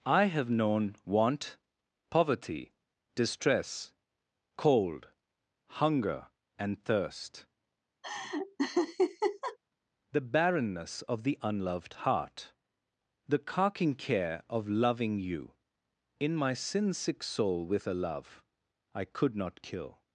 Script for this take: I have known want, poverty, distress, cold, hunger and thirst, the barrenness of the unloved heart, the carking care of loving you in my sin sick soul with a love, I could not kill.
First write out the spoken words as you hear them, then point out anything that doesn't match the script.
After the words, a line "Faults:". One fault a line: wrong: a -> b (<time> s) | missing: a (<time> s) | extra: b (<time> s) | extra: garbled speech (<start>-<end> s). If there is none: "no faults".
I have known want, poverty, distress, cold, hunger and thirst, the barrenness of the unloved heart, the carking care of loving you in my sin sick soul with a love, I could not kill.
Faults:
no faults